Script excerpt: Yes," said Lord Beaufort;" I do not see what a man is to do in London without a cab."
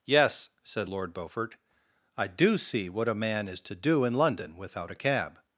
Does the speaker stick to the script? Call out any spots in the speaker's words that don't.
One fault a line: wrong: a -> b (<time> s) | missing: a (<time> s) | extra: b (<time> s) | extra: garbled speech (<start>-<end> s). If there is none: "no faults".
missing: not (2.6 s)